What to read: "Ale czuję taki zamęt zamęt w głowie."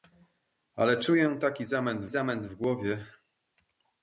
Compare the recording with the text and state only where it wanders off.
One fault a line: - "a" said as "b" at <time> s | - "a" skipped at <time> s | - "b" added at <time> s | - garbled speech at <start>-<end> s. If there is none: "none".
none